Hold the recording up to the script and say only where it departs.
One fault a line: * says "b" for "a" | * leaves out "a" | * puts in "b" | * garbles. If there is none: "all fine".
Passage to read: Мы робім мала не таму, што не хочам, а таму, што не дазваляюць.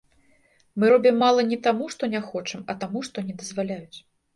all fine